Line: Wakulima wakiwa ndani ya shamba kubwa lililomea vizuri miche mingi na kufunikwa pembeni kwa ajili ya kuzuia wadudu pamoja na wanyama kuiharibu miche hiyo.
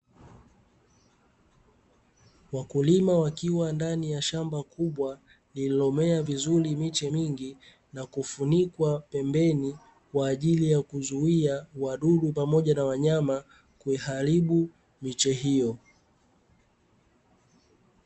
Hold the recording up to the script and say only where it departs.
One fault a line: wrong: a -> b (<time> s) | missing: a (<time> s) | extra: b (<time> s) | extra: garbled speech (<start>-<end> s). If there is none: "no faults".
no faults